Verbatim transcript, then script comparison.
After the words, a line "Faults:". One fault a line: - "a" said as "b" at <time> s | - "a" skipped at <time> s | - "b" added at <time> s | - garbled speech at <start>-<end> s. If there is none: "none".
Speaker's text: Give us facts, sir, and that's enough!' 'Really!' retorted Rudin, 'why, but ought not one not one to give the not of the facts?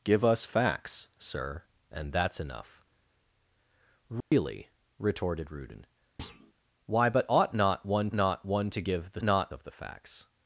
Give us facts, sir, and that's enough!' 'Really!' retorted Rudin, 'why, but ought not one not one to give the not of the facts?
Faults:
none